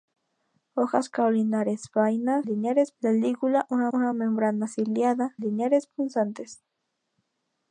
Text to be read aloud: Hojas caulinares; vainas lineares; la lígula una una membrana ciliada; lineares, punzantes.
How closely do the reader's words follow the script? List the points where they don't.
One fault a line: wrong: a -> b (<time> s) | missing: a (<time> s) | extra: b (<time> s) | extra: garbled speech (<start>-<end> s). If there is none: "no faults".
no faults